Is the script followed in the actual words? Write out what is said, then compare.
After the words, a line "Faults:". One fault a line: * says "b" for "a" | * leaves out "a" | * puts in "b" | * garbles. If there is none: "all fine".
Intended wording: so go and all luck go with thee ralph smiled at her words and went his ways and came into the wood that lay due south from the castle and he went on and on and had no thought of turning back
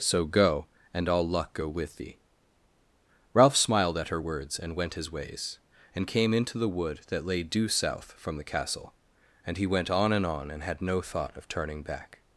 so go and all luck go with thee ralph smiled at her words and went his ways and came into the wood that lay due south from the castle and he went on and on and had no thought of turning back
Faults:
all fine